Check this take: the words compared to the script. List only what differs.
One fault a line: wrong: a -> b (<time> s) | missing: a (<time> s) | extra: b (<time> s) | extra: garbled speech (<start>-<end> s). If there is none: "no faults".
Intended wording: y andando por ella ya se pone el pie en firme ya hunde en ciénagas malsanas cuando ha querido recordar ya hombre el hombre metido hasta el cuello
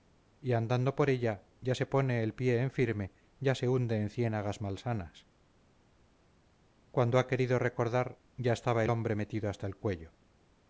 extra: se (3.5 s)
wrong: hombre -> estaba (8.5 s)